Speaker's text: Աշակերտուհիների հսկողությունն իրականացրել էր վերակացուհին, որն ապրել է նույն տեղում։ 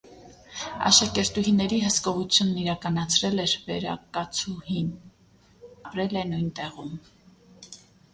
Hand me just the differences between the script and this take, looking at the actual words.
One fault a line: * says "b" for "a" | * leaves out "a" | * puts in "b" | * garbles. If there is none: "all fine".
* leaves out "որն"